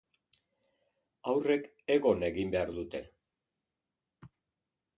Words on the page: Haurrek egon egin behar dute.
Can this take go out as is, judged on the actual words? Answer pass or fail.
pass